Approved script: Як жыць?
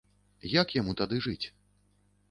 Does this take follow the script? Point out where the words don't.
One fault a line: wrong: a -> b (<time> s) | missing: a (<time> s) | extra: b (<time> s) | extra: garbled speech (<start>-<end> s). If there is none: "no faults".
extra: яму тады (0.8 s)